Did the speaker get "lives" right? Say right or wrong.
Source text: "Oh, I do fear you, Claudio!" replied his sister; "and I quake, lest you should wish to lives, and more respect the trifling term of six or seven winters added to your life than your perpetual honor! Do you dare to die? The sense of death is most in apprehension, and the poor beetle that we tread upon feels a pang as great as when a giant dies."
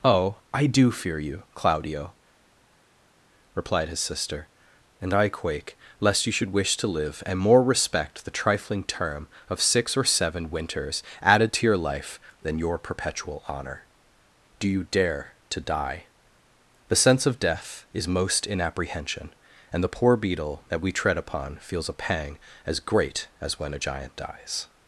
wrong